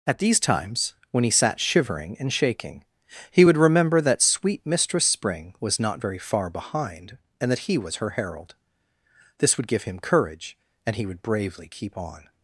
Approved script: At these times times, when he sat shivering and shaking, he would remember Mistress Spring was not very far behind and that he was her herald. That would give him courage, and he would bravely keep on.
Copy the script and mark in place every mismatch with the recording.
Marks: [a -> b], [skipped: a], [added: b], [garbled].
At these times [skipped: times,] when he sat shivering and shaking, he would remember [added: that sweet] Mistress Spring was not very far behind and that he was her herald. [That -> This] would give him courage, and he would bravely keep on.